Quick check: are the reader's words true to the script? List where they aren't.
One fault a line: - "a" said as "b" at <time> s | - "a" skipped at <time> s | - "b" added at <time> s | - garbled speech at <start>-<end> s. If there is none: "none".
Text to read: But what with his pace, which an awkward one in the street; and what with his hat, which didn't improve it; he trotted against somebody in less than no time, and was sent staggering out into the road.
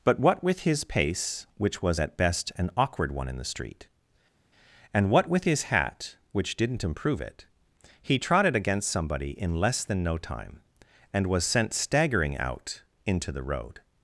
- "was at best" added at 1.8 s